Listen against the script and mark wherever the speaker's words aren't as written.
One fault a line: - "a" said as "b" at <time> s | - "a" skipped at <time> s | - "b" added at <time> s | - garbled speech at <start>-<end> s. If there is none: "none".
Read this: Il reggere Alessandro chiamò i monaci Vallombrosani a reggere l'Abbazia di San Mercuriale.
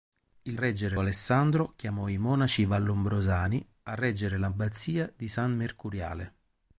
none